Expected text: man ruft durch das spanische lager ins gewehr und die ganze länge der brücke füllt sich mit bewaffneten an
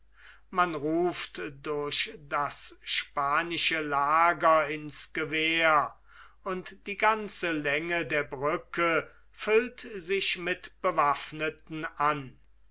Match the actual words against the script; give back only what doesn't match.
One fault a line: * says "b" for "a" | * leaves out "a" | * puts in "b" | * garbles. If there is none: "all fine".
all fine